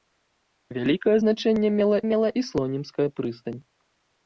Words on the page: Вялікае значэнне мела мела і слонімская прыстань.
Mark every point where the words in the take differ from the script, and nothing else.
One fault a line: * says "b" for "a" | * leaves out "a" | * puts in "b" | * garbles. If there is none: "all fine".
all fine